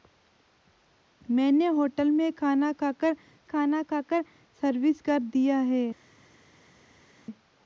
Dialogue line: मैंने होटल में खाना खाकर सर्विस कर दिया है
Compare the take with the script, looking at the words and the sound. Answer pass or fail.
fail